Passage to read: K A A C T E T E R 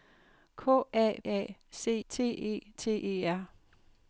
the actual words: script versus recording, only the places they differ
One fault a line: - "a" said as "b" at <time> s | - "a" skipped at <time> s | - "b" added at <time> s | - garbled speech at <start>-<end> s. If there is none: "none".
none